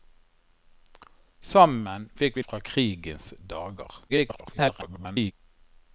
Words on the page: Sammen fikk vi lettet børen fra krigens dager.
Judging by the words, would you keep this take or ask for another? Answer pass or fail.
fail